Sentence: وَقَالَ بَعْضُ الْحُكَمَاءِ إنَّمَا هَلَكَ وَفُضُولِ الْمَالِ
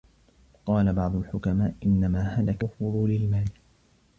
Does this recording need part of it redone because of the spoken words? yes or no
no